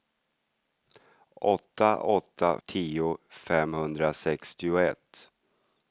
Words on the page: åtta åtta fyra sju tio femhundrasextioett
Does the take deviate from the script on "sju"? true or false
true